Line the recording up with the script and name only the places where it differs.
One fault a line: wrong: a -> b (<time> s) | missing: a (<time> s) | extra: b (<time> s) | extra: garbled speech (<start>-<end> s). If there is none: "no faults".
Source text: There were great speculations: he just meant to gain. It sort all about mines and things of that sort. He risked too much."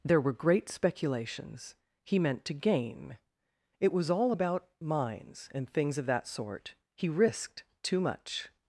missing: just (2.2 s)
wrong: sort -> was (3.9 s)